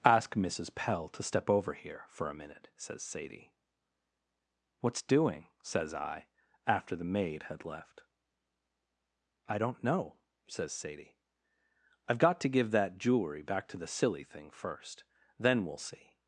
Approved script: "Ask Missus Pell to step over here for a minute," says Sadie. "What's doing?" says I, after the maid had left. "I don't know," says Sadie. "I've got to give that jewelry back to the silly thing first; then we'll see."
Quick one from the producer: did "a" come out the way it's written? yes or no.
yes